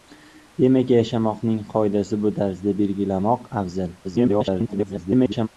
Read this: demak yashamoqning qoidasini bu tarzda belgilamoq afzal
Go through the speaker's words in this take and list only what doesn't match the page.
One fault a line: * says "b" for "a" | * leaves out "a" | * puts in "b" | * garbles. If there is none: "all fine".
* garbles